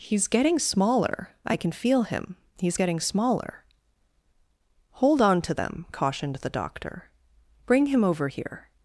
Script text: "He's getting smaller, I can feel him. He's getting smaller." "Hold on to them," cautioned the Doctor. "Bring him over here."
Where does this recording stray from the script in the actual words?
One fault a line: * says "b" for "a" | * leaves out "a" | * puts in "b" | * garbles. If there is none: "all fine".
all fine